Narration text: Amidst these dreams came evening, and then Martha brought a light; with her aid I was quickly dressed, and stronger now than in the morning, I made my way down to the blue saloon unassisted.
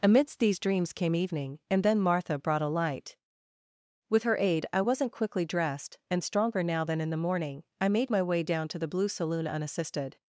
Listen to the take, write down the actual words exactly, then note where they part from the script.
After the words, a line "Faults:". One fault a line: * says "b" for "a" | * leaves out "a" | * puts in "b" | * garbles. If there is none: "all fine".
Amidst these dreams came evening, and then Martha brought a light; with her aid I wasn't quickly dressed, and stronger now than in the morning, I made my way down to the blue saloon unassisted.
Faults:
* says "wasn't" for "was"